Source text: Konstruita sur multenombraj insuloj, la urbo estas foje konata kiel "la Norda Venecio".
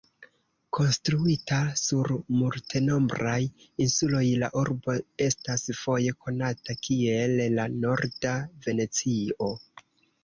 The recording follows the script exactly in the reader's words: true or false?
true